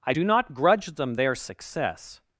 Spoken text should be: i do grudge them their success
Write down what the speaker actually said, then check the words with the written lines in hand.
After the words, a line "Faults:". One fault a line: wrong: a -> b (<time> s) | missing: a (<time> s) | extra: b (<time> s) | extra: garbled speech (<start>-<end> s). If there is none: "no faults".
i do not grudge them their success
Faults:
extra: not (0.2 s)